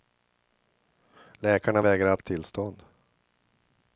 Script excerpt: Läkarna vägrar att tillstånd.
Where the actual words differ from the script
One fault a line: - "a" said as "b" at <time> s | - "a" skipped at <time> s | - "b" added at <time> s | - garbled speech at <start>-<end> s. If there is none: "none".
none